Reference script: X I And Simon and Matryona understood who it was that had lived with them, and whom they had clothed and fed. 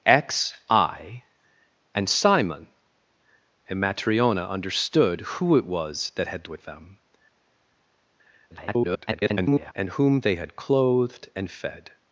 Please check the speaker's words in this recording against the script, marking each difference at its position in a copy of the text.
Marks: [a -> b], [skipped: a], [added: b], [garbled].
X I And Simon and Matryona understood who it was that had [skipped: lived] with them, [garbled] and whom they had clothed and fed.